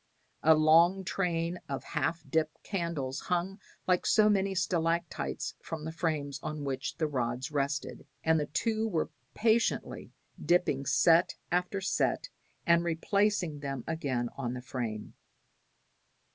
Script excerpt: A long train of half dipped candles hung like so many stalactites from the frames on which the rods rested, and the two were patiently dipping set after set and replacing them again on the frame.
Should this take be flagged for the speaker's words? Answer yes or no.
no